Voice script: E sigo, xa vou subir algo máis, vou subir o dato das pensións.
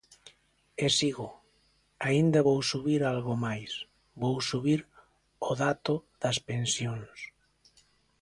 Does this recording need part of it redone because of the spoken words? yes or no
yes